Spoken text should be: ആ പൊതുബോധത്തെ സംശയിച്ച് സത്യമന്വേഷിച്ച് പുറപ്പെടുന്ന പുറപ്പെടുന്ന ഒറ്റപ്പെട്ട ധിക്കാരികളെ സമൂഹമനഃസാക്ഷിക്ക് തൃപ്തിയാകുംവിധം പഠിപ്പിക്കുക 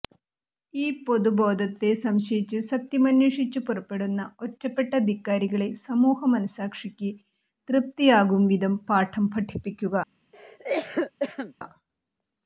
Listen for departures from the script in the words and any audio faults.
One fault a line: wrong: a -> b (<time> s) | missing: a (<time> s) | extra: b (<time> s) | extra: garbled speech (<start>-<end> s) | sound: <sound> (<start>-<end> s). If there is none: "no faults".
wrong: ആ -> ഈ (0.7 s)
missing: പുറപ്പെടുന്ന (4.3 s)
extra: പാഠം (8.9 s)
sound: cough (10.3-11.5 s)